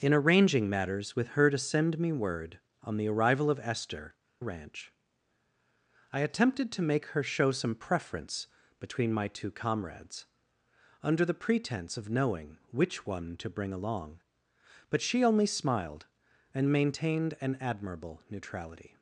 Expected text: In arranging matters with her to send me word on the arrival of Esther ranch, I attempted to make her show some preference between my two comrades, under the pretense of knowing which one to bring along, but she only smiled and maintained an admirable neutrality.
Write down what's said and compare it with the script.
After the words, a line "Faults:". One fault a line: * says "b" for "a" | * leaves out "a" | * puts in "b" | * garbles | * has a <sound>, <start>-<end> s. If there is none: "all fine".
In arranging matters with her to send me word on the arrival of Esther ranch, I attempted to make her show some preference between my two comrades, under the pretense of knowing which one to bring along, but she only smiled and maintained an admirable neutrality.
Faults:
all fine